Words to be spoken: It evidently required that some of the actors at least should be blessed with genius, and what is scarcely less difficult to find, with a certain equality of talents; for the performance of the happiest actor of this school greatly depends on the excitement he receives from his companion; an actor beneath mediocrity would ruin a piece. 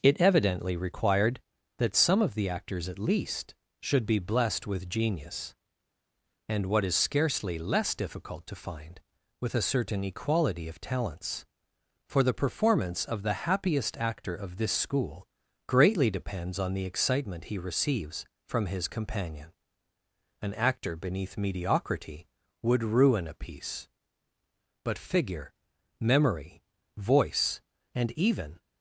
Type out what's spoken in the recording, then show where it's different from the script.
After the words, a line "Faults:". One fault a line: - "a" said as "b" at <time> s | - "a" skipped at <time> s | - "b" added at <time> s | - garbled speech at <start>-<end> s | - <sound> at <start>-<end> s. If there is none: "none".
It evidently required that some of the actors at least should be blessed with genius, and what is scarcely less difficult to find, with a certain equality of talents; for the performance of the happiest actor of this school greatly depends on the excitement he receives from his companion; an actor beneath mediocrity would ruin a piece. "But figure, memory, voice, and even
Faults:
- "But figure memory voice and even" added at 24.8 s